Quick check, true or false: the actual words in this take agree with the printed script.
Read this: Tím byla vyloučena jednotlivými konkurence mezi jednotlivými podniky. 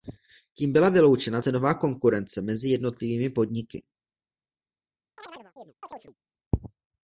false